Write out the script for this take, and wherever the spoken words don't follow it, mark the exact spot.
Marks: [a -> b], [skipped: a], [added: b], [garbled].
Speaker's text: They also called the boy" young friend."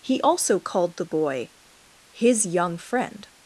[They -> He] also called the boy" [added: his] young friend."